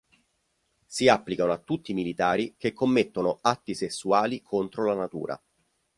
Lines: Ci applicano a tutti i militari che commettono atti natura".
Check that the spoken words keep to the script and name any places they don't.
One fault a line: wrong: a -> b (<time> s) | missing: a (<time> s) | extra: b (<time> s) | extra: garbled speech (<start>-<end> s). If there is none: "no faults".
wrong: Ci -> Si (0.9 s)
extra: sessuali contro la (3.8 s)